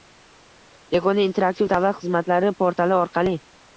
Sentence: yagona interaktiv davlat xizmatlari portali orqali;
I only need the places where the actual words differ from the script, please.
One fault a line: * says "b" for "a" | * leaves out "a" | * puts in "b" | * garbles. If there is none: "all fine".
all fine